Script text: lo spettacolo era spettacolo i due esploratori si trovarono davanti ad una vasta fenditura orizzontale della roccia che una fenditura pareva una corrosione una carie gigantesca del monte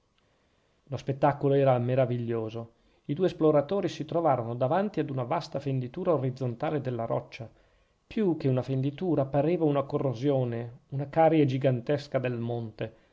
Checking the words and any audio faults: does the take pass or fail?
fail